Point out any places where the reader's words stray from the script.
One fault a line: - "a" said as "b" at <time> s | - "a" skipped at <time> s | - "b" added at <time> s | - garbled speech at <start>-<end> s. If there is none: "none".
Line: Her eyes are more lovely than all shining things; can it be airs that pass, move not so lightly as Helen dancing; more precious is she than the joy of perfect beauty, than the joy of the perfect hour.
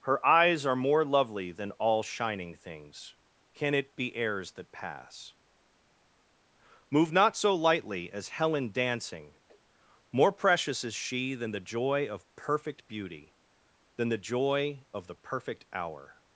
none